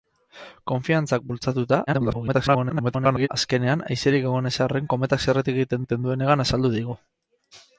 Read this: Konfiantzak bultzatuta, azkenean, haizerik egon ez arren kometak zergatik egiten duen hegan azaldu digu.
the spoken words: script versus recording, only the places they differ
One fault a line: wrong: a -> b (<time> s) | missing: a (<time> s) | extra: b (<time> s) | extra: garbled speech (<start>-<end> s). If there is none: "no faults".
extra: garbled speech (1.9-3.3 s)
extra: egiten (5.8 s)